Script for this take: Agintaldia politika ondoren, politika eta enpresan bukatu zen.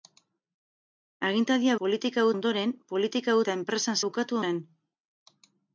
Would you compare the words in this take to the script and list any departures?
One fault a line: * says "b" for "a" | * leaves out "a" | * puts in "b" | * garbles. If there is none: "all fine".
all fine